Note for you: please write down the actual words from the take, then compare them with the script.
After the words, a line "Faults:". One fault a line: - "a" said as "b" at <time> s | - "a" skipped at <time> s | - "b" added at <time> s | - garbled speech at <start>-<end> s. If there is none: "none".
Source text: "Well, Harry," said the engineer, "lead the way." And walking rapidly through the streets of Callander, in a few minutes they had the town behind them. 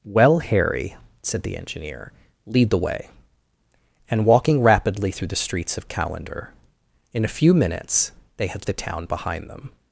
"Well, Harry," said the engineer, "lead the way." And walking rapidly through the streets of Callander, in a few minutes they had the town behind them.
Faults:
none